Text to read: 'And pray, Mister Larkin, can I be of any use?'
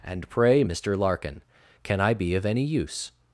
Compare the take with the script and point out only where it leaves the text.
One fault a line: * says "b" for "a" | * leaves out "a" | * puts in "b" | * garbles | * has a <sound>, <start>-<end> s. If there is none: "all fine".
all fine